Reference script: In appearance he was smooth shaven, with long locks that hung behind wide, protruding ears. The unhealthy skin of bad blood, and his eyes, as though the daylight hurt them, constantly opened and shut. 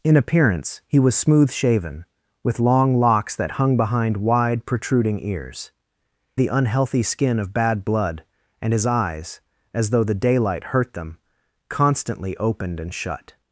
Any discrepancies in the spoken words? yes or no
no